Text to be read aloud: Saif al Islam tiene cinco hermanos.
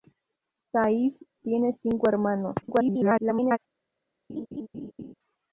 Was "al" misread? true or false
true